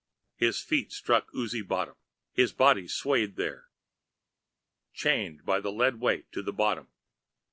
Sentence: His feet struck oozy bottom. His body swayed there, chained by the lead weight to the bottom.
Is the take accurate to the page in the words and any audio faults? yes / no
yes